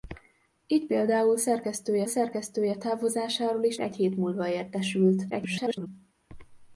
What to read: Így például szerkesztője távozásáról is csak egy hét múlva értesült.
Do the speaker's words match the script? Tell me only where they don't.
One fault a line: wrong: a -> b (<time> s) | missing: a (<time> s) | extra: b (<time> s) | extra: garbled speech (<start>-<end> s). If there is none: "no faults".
extra: szerkesztője (2.1 s)
missing: csak (3.8 s)
extra: garbled speech (5.3-5.9 s)